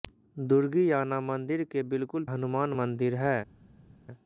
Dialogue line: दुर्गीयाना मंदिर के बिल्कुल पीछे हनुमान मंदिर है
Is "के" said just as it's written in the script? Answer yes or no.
yes